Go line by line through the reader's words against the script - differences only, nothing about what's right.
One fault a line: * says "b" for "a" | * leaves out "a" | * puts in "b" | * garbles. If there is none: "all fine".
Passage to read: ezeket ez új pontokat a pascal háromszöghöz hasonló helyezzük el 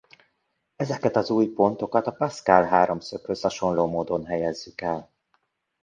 * says "az" for "ez"
* puts in "módon"